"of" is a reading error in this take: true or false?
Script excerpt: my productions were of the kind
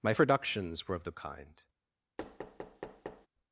false